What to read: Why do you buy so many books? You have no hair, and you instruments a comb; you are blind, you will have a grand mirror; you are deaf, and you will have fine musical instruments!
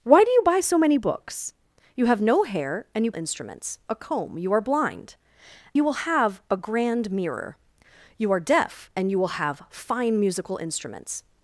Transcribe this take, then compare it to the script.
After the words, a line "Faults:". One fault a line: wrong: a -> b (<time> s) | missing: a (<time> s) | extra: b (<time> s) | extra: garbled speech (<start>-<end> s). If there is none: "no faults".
Why do you buy so many books? You have no hair, and you instruments a comb; you are blind, you will have a grand mirror; you are deaf, and you will have fine musical instruments!
Faults:
no faults